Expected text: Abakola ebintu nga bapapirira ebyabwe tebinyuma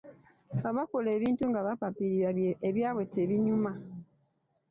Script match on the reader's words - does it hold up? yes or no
yes